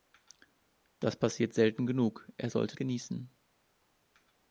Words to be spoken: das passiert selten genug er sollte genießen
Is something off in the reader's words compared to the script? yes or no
no